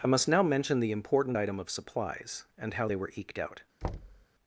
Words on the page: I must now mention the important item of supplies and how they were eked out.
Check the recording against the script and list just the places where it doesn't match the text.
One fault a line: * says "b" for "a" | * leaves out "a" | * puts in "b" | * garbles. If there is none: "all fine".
all fine